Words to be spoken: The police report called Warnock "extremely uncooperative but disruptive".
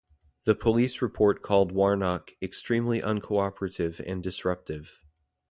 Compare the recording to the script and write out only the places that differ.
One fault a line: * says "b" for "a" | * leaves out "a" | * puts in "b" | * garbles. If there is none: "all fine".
* says "and" for "but"